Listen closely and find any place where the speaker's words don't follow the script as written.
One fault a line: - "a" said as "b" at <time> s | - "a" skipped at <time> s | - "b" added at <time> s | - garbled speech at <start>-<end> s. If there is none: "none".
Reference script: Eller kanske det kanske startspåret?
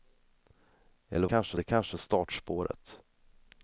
none